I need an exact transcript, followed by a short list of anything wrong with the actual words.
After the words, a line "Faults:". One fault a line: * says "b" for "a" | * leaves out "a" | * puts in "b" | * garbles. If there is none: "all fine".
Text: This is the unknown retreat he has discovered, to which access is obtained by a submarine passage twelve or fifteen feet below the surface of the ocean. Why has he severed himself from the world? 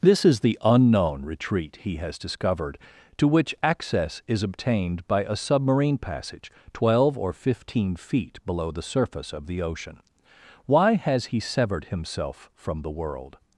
This is the unknown retreat he has discovered, to which access is obtained by a submarine passage twelve or fifteen feet below the surface of the ocean. Why has he severed himself from the world?
Faults:
all fine